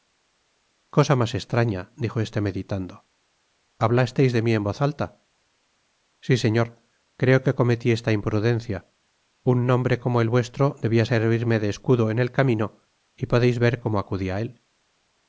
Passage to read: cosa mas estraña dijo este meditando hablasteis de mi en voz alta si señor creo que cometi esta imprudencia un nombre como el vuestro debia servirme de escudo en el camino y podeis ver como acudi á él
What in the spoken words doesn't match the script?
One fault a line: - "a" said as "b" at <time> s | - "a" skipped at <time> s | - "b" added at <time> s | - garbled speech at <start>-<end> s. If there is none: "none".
none